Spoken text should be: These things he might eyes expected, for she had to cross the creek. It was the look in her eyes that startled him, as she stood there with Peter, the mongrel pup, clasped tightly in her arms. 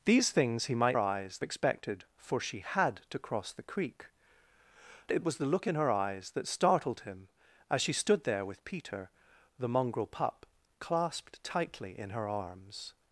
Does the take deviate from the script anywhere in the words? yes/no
no